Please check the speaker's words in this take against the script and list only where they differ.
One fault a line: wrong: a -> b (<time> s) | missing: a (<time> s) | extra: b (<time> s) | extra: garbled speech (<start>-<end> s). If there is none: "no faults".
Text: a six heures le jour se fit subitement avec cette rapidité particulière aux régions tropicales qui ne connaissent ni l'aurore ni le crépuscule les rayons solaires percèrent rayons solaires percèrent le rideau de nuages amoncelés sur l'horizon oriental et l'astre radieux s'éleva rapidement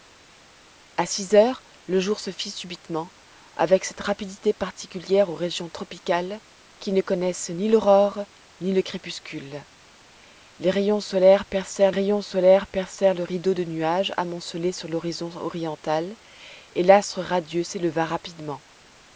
no faults